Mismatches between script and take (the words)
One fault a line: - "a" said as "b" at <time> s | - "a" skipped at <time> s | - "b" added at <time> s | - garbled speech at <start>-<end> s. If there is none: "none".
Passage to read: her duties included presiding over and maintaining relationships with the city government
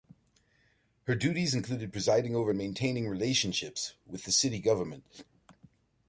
none